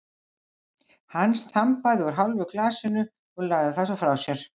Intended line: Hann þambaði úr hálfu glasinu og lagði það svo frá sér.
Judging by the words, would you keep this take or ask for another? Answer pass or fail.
pass